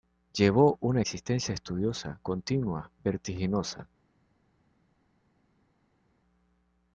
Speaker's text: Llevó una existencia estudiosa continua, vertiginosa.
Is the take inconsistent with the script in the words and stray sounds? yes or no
no